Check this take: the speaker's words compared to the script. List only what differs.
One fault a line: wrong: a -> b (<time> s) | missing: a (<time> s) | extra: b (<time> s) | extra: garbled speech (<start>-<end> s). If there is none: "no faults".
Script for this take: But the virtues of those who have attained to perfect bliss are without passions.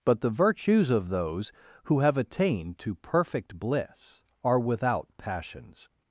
no faults